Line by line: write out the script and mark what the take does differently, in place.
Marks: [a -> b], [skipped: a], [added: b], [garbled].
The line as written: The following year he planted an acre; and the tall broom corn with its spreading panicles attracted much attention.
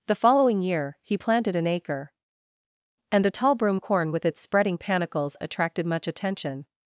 The following year he planted an acre; and the tall broom corn with its spreading panicles attracted much attention.